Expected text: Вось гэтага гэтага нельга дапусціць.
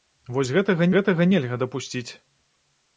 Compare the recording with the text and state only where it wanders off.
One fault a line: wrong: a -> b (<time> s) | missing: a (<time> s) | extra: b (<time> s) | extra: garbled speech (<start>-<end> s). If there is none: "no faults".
no faults